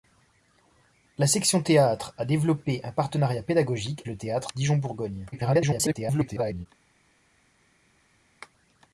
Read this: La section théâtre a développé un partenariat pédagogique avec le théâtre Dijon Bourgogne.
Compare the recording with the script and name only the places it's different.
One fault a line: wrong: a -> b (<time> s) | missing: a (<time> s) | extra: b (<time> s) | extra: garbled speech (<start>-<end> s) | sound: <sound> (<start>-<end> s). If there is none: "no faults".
missing: avec (4.0 s)
extra: garbled speech (5.3-6.7 s)